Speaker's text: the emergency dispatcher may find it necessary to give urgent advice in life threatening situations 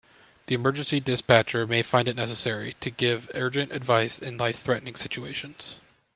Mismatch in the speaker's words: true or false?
false